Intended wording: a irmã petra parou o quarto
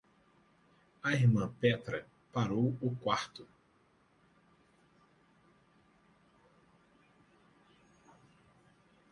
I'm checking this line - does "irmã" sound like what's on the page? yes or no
yes